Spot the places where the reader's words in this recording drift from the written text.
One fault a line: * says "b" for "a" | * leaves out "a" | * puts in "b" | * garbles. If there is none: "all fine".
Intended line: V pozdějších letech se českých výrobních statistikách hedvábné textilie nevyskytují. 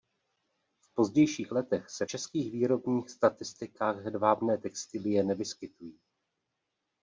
all fine